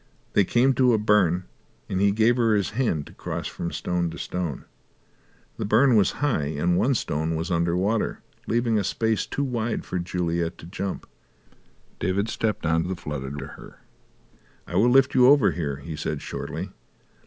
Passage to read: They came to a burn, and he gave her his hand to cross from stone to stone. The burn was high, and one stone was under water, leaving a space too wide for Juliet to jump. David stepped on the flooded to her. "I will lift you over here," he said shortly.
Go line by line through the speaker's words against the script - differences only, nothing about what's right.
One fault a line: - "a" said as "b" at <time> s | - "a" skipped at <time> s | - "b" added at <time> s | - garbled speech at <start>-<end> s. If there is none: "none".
none